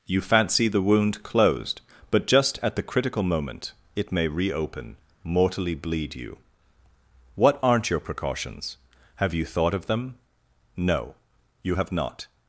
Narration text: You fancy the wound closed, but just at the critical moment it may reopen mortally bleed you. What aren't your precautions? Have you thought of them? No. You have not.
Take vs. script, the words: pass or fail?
pass